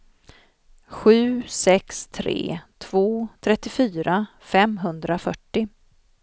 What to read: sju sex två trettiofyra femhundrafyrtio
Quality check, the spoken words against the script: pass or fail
fail